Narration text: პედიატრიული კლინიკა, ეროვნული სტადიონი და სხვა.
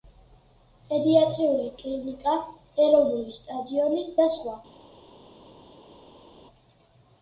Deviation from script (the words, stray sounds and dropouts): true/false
false